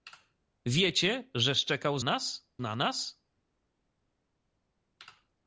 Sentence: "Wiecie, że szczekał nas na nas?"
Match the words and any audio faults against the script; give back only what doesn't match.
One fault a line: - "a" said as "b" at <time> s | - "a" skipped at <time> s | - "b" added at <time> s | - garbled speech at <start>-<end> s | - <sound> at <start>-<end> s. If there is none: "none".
none